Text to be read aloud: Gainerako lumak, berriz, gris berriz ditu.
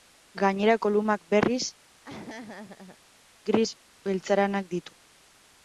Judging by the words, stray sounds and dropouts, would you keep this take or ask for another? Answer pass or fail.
fail